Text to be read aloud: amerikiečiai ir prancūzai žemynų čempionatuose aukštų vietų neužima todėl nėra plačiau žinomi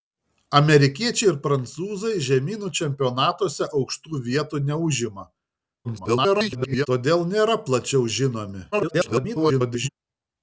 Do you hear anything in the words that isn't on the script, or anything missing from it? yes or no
yes